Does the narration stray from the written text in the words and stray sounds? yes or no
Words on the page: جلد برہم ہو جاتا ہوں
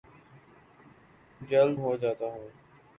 yes